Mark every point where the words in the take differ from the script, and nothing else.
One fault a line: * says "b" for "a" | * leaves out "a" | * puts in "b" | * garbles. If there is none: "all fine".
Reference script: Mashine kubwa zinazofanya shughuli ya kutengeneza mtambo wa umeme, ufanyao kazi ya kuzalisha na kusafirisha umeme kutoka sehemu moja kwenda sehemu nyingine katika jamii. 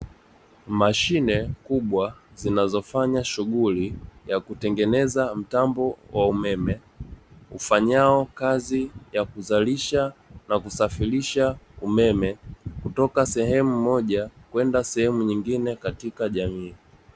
all fine